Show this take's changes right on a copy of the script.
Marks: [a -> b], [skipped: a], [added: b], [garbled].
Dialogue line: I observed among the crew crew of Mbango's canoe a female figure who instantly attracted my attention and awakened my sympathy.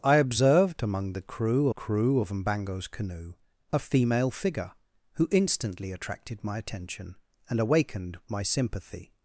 I observed among the crew crew of Mbango's canoe a female figure who instantly attracted my attention and awakened my sympathy.